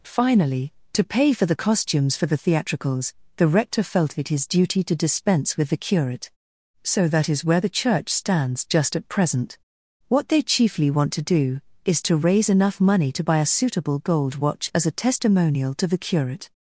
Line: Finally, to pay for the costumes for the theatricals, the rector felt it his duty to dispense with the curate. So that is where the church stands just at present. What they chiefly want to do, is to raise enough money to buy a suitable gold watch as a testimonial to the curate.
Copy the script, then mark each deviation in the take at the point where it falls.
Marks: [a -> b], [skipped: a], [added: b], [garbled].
Finally, to pay for the costumes for the theatricals, the rector felt it his duty to dispense with the curate. So that is where the church stands just at present. What they chiefly want to do, is to raise enough money to buy a suitable gold watch as a testimonial to the curate.